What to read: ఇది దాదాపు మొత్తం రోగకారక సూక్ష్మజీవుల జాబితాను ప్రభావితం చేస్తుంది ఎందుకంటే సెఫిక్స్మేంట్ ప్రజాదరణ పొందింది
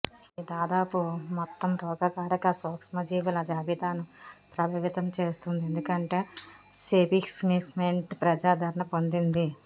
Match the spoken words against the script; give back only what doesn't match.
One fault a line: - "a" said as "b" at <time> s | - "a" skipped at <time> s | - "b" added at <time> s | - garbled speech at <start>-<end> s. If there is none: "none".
none